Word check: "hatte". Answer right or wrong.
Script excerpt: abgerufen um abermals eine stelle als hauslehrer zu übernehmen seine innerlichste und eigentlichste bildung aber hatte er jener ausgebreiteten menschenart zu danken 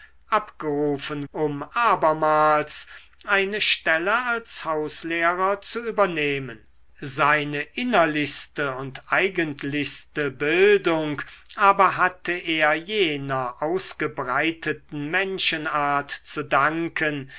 right